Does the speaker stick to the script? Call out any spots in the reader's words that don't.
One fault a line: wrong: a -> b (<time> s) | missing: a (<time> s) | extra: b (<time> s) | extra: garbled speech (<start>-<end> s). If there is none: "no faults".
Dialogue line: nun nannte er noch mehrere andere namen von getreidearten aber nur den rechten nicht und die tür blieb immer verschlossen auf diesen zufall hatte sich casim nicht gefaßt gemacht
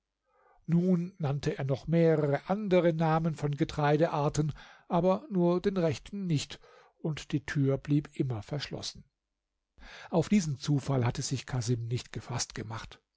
no faults